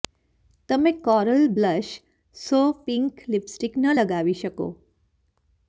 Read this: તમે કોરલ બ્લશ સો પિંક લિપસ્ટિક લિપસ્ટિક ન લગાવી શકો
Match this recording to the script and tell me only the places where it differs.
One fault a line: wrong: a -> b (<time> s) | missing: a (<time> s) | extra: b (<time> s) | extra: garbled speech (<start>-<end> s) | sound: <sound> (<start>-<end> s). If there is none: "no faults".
missing: લિપસ્ટિક (3.7 s)